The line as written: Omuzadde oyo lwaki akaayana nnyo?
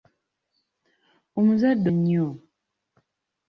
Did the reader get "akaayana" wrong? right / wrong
wrong